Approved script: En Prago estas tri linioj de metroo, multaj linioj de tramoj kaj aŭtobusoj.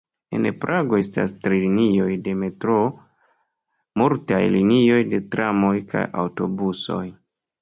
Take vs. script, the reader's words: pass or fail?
pass